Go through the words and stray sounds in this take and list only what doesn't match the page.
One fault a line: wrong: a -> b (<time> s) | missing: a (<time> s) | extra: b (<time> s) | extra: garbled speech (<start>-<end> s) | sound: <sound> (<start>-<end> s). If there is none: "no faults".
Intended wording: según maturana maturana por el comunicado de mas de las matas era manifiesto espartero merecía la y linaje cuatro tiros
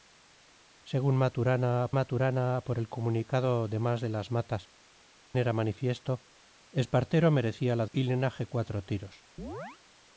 sound: chirp (9.4-9.8 s)